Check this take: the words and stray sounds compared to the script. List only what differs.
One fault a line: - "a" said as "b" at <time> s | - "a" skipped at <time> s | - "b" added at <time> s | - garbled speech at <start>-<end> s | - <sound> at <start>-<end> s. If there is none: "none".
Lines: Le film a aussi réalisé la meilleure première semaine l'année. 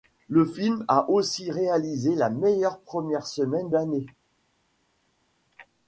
none